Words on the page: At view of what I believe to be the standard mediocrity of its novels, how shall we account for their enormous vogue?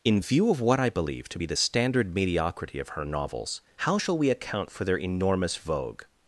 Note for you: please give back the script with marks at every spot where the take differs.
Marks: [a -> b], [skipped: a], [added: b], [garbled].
[At -> In] view of what I believe to be the standard mediocrity of [its -> her] novels, how shall we account for their enormous vogue?